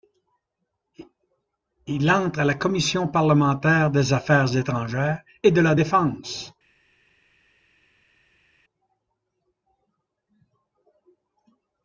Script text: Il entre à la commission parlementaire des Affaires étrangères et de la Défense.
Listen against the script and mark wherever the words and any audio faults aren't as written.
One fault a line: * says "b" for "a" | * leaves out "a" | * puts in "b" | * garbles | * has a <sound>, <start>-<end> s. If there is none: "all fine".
all fine